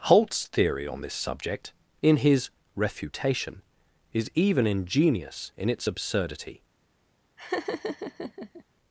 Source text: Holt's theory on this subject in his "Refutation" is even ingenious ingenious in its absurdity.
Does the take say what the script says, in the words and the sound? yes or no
no